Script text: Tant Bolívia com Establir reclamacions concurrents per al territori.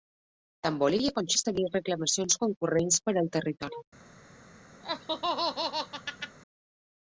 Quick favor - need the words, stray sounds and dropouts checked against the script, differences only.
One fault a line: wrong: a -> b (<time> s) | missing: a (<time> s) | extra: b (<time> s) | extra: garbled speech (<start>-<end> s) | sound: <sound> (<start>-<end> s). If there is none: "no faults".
sound: laugh (4.8-6.4 s)